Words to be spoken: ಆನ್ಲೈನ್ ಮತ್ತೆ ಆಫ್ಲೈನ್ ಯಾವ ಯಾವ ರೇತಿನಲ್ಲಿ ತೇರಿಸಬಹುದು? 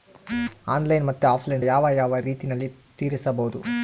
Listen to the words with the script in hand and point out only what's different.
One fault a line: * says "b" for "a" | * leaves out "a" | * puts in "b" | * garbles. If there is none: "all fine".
all fine